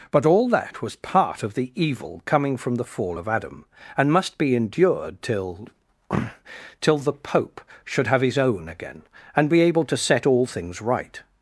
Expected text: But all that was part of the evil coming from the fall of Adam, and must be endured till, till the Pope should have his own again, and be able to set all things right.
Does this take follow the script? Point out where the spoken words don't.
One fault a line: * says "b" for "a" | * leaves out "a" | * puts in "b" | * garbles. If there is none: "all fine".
all fine